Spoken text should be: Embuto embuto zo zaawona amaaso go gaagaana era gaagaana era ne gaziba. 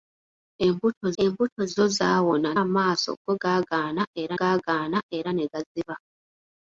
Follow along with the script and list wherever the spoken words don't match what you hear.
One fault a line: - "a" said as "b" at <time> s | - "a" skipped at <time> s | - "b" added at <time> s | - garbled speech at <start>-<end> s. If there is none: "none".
none